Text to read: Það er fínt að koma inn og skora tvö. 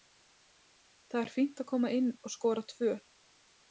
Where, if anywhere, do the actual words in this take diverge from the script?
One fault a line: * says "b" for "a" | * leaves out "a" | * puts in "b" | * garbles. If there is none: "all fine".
all fine